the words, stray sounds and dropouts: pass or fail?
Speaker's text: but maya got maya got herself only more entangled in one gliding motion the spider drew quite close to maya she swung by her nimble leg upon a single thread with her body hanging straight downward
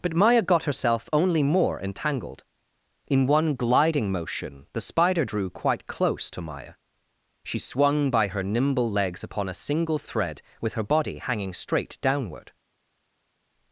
fail